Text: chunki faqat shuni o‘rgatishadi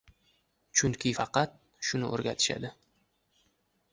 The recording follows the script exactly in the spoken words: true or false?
true